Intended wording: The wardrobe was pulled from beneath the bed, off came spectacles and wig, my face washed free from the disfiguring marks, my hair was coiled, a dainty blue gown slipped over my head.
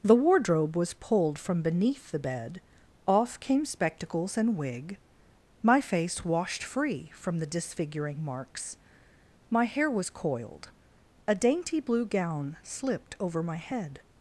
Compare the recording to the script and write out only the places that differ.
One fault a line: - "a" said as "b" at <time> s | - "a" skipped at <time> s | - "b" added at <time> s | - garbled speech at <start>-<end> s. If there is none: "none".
none